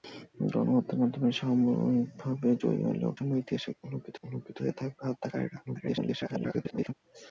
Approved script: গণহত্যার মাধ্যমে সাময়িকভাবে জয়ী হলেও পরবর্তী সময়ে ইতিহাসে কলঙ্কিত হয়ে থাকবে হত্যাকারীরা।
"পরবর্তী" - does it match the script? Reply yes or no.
no